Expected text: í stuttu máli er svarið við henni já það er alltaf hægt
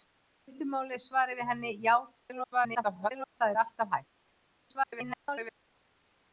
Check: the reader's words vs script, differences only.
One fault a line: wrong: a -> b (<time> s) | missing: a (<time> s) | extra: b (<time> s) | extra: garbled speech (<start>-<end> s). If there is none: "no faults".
extra: garbled speech (2.2-3.4 s)
extra: garbled speech (4.4-5.6 s)